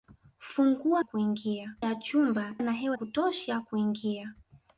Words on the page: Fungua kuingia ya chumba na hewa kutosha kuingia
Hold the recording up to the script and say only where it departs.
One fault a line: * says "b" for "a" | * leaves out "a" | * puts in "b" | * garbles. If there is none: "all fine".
all fine